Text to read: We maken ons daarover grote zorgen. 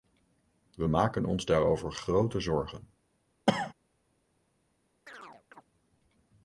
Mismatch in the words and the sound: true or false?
true